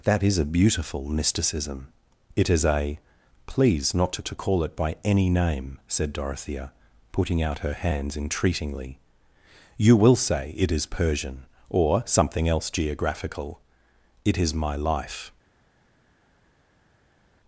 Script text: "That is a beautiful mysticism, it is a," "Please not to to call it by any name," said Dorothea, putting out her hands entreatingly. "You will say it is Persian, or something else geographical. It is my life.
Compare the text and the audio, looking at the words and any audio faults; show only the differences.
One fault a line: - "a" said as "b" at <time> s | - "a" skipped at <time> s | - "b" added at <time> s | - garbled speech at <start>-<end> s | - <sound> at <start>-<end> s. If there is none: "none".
none